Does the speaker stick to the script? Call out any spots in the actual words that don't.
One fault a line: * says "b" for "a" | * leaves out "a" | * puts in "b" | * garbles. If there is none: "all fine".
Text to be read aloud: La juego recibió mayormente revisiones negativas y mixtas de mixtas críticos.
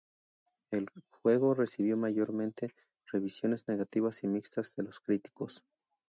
* says "El" for "La"
* says "los" for "mixtas"